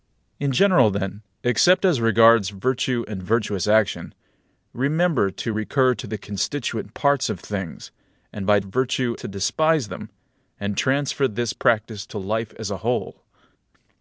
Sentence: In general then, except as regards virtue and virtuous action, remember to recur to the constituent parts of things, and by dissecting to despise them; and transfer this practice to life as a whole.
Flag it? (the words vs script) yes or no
yes